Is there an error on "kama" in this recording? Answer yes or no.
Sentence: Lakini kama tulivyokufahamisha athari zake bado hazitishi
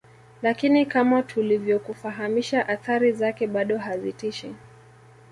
no